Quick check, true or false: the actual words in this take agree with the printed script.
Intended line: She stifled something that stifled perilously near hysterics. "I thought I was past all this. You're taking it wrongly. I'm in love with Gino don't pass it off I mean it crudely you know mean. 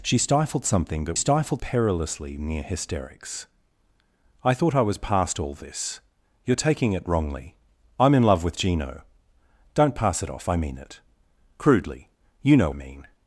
true